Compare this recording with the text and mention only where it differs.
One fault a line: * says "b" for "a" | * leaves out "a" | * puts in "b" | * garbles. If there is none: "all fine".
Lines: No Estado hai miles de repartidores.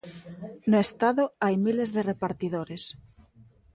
all fine